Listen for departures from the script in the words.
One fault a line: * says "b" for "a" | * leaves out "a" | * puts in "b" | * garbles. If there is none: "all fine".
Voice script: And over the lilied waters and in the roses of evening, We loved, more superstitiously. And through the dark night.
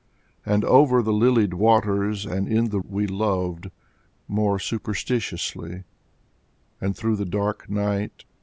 * leaves out "roses of evening"